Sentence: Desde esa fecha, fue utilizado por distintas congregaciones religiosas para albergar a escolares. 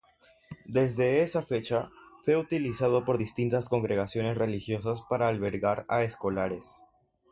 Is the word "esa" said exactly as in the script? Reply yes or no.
yes